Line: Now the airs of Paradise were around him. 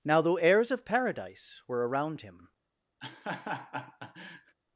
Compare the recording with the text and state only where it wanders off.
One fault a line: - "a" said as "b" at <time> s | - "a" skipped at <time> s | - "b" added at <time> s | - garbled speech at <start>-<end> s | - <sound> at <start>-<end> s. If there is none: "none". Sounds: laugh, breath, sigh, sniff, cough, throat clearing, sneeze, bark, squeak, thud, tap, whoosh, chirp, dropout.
- "the airs" said as "though heirs" at 0.2 s
- laugh at 3.0-4.6 s